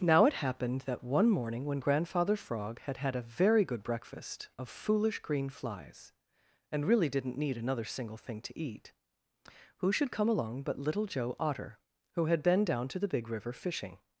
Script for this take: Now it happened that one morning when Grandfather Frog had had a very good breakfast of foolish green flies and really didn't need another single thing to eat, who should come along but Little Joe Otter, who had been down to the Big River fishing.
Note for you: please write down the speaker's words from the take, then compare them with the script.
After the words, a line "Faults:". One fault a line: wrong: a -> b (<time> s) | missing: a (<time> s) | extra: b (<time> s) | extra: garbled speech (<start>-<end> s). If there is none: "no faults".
Now it happened that one morning when Grandfather Frog had had a very good breakfast of foolish green flies and really didn't need another single thing to eat, who should come along but Little Joe Otter, who had been down to the Big River fishing.
Faults:
no faults